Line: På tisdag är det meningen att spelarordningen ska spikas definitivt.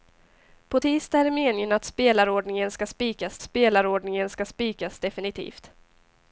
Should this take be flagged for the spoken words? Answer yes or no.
yes